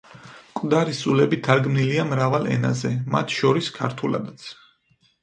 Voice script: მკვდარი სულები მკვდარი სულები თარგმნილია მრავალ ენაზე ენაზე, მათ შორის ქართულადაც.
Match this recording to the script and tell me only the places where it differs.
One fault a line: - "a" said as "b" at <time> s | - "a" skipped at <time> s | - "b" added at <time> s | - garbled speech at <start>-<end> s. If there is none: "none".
- "მკვდარი სულები" skipped at 1.4 s
- "ენაზე" skipped at 2.9 s